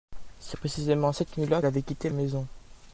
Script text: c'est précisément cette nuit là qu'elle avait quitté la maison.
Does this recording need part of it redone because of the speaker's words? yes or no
yes